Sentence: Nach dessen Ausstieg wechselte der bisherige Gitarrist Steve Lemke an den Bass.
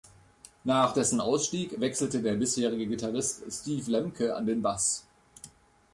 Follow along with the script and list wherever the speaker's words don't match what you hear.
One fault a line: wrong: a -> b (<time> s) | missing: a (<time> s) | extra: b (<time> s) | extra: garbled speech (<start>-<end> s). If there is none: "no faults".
no faults